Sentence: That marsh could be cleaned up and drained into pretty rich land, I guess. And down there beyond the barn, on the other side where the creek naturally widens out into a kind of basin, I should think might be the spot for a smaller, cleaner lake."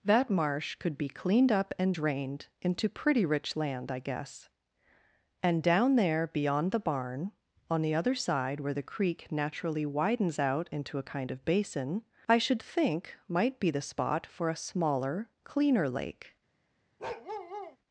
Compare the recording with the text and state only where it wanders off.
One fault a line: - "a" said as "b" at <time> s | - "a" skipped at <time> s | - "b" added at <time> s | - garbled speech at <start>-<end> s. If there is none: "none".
none